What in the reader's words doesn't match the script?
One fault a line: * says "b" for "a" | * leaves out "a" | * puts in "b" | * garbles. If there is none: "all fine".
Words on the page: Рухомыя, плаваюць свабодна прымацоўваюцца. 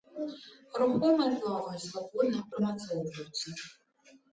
all fine